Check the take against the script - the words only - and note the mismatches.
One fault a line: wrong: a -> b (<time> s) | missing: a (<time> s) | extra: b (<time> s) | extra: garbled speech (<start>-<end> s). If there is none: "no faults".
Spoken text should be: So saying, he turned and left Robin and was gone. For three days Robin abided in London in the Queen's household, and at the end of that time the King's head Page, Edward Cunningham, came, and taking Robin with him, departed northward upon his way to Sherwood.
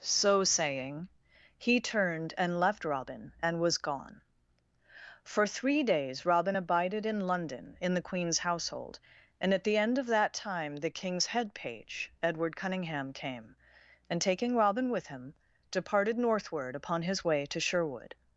no faults